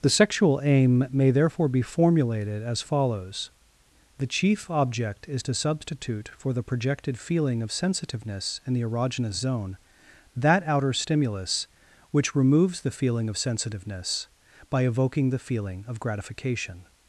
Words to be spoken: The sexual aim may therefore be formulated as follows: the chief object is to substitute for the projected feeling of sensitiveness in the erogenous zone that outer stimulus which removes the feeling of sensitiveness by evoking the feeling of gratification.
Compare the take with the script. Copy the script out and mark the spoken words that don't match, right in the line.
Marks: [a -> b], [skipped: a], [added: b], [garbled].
The sexual aim may therefore be formulated as follows: the chief object is to substitute for the projected feeling of sensitiveness in the erogenous zone that outer stimulus which removes the feeling of sensitiveness by evoking the feeling of gratification.